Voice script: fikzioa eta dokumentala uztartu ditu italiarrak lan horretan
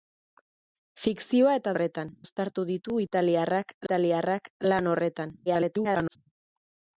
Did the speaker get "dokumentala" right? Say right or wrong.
wrong